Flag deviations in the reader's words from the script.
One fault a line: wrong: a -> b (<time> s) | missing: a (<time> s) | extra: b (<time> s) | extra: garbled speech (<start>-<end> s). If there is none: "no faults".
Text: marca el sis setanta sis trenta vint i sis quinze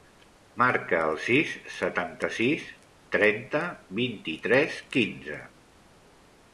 wrong: sis -> tres (4.5 s)